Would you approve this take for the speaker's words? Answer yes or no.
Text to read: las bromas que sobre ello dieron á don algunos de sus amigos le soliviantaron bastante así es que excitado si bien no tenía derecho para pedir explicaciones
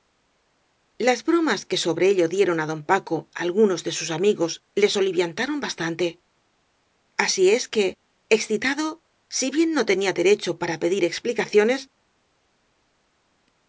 no